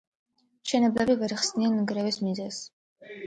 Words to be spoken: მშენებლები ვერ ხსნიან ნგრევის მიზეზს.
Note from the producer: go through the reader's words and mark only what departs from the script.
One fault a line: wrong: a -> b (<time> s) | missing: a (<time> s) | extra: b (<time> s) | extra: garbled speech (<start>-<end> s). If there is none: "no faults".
no faults